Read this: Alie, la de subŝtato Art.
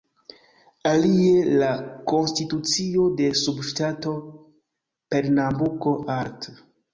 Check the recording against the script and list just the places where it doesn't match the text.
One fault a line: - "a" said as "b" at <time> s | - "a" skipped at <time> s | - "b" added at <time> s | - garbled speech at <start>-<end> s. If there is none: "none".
- "konstitucio" added at 2.1 s
- "Pernambuko" added at 5.1 s